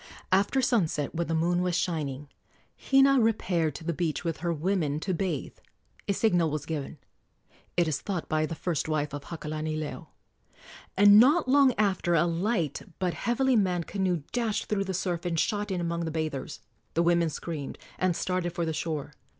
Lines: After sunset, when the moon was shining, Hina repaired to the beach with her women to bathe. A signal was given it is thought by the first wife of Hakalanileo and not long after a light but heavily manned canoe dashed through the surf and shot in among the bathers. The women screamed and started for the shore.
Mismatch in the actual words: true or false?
false